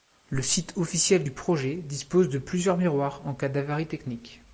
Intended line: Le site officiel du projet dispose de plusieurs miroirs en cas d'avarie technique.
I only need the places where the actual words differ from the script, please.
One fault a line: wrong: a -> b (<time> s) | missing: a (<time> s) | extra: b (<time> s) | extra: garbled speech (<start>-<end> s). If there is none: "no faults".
no faults